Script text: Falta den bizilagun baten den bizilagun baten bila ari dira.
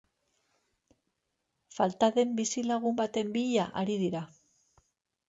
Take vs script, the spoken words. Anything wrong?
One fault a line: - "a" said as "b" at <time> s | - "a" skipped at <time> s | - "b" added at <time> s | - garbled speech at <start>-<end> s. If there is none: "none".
- "den bizilagun baten" skipped at 3.3 s